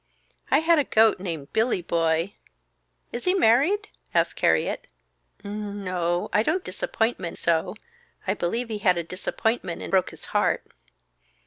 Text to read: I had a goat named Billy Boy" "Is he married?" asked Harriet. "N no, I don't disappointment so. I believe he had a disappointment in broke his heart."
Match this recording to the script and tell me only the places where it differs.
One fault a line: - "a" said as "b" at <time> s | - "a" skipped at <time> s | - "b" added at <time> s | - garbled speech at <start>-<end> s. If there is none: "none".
none